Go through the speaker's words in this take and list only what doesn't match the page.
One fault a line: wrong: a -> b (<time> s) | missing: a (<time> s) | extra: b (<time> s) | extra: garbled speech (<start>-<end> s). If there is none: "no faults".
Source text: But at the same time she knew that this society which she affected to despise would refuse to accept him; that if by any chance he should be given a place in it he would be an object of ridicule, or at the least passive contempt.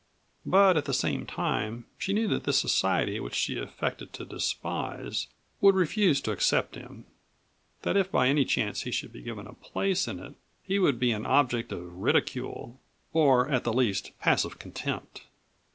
no faults